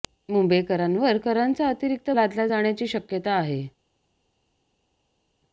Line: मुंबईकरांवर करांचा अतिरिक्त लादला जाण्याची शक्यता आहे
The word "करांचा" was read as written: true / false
true